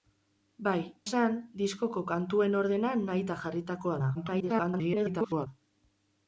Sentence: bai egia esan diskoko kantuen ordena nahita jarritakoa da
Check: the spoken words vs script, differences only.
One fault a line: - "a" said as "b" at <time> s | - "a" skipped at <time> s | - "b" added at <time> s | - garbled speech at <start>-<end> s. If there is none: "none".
- "egia" skipped at 0.8 s
- garbled speech at 4.1-5.5 s